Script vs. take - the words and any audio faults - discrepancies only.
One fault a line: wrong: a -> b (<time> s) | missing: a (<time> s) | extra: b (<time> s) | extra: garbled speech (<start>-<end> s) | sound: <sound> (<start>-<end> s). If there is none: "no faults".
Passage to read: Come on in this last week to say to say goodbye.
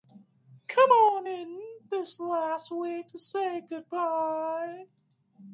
missing: to say (3.6 s)